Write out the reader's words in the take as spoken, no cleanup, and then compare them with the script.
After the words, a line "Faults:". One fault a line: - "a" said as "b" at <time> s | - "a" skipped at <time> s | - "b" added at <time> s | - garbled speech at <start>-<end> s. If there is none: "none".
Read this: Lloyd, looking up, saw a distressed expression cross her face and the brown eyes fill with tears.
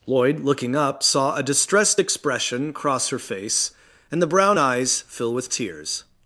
Lloyd, looking up, saw a distressed expression cross her face and the brown eyes fill with tears.
Faults:
none